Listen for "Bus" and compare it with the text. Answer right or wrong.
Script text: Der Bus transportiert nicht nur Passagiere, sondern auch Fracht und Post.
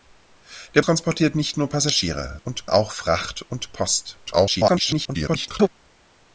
wrong